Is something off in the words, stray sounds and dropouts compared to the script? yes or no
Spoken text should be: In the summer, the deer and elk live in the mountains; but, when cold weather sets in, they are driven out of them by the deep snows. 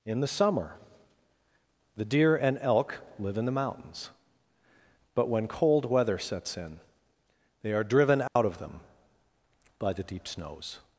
yes